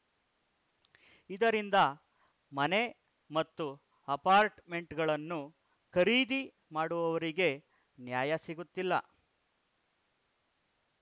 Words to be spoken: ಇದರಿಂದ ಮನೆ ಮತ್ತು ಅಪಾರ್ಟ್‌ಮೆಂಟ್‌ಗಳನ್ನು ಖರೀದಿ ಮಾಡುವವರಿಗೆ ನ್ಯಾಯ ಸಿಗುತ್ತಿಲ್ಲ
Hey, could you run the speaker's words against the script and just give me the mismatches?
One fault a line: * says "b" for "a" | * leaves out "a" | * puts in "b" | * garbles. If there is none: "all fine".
all fine